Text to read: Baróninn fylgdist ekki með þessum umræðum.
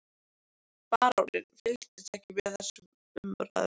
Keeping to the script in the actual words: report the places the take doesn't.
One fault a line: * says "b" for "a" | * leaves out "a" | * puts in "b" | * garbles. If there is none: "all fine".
all fine